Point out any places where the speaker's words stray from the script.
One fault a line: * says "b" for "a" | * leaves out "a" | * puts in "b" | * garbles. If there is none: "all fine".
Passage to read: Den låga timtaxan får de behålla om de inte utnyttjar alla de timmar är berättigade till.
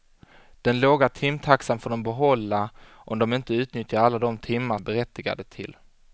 all fine